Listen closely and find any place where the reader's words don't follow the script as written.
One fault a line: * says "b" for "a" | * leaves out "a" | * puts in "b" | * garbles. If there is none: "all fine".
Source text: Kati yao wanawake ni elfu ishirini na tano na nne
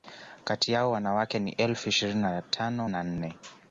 all fine